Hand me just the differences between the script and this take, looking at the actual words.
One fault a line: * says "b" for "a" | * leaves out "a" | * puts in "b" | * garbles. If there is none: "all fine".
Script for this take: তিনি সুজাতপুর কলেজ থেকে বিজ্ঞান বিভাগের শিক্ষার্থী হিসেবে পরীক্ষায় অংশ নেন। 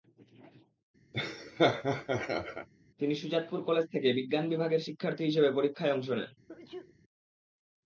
all fine